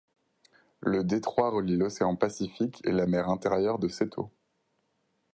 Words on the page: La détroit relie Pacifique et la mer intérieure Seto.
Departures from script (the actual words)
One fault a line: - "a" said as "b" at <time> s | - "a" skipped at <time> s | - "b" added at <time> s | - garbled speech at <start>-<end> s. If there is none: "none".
- "La" said as "Le" at 0.8 s
- "l'océan" added at 1.8 s
- "de" added at 3.8 s